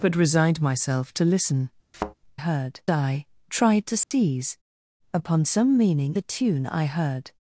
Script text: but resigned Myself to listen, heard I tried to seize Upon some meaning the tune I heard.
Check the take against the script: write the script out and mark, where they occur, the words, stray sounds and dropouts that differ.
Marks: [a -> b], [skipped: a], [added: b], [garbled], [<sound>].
but resigned Myself to listen, [thud] heard I tried to seize [dropout] Upon some meaning the tune I heard.